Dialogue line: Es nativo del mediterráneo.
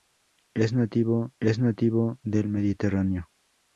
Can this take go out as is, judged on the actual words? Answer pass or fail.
fail